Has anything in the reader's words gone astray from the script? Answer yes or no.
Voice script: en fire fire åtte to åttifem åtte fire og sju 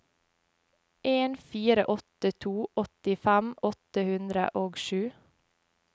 yes